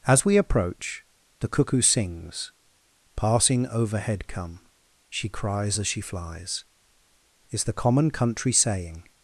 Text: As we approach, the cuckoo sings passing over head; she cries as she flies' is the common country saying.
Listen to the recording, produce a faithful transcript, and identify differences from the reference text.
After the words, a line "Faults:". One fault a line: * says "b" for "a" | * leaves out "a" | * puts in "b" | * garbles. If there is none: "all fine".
As we approach, the cuckoo sings passing overhead come; she cries as she flies' is the common country saying.
Faults:
* says "overhead come" for "over head"